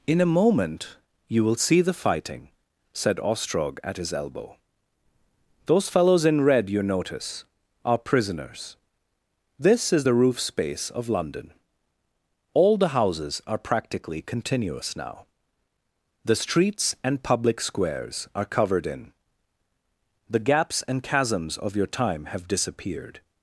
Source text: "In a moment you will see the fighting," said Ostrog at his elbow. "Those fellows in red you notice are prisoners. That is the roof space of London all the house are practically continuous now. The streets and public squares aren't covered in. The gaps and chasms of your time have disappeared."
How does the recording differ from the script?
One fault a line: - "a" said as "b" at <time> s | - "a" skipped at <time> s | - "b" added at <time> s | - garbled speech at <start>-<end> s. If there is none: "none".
- "That" said as "This" at 9.6 s
- "house" said as "houses" at 12.9 s
- "aren't" said as "are" at 18.3 s